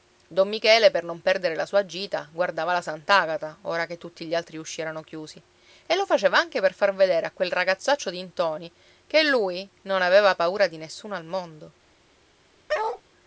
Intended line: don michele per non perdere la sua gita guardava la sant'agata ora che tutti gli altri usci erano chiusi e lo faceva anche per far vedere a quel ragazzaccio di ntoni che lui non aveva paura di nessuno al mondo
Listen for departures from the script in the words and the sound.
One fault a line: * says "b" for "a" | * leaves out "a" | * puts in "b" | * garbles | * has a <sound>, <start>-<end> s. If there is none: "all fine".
* has a bark, 12.7-13.0 s